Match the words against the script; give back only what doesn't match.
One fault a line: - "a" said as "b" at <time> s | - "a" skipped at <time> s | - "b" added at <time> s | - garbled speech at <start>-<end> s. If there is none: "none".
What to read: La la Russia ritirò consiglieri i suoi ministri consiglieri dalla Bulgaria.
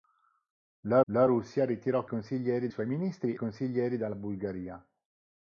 none